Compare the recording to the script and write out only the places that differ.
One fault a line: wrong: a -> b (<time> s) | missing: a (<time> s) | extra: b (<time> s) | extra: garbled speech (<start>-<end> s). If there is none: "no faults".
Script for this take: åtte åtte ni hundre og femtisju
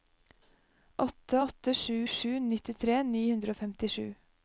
extra: sju sju nittitre (1.7 s)